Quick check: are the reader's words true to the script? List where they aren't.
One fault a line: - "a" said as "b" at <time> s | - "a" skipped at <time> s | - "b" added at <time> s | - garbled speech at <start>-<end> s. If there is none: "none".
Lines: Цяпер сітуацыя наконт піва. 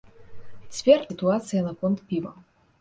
none